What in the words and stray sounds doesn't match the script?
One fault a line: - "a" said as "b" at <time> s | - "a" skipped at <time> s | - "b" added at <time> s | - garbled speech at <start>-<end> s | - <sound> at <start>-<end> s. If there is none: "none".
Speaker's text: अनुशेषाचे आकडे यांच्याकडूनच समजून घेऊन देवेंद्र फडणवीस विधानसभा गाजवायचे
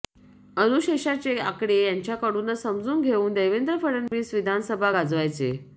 - dropout at 4.1-4.1 s